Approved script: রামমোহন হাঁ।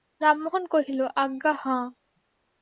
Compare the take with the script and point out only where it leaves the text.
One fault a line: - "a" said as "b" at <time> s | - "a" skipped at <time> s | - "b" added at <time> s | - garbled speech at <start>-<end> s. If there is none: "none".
- "কহিল আজ্ঞা" added at 0.7 s